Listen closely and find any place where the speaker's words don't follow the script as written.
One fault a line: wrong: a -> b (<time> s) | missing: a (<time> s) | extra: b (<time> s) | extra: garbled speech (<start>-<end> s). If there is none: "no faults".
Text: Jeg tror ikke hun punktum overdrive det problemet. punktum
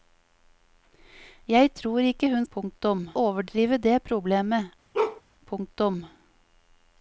no faults